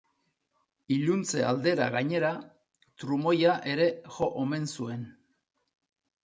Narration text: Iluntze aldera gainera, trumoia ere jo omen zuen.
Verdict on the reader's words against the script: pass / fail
pass